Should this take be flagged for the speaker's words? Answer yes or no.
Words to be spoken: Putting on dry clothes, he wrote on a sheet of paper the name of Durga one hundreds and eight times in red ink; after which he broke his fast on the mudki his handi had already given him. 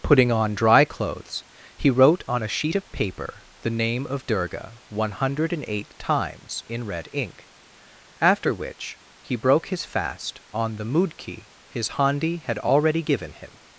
yes